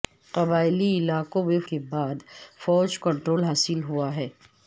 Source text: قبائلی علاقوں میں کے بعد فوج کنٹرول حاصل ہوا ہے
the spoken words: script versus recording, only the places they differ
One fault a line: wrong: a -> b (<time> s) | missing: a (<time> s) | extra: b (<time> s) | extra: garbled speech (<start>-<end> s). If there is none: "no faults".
no faults